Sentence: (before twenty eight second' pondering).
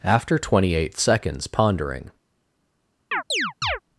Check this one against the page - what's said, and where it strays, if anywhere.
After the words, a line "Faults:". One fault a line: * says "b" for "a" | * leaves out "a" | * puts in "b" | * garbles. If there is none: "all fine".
(after twenty eight seconds' pondering).
Faults:
* says "after" for "before"
* says "seconds" for "second"